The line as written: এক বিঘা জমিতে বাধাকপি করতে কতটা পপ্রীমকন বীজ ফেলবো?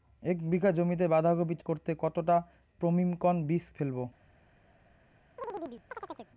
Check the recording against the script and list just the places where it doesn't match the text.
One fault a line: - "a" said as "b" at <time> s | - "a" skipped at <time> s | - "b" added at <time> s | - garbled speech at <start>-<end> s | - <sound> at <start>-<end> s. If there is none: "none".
- chirp at 5.4-6.3 s